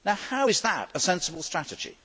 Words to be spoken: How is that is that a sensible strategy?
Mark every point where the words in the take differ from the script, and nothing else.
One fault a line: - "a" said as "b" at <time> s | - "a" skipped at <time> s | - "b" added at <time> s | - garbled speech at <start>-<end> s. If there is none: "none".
- "is that" skipped at 0.9 s